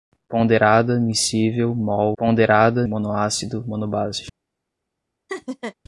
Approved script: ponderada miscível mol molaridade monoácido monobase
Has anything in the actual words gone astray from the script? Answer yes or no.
yes